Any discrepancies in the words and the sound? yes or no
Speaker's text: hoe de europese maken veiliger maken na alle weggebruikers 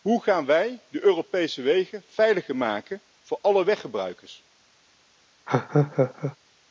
yes